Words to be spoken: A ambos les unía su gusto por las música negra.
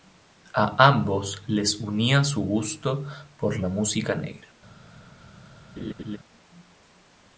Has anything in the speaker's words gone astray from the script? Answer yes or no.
yes